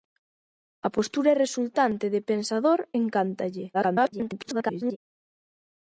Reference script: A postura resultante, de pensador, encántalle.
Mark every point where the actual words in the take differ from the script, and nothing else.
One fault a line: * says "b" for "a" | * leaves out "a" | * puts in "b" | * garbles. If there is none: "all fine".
* garbles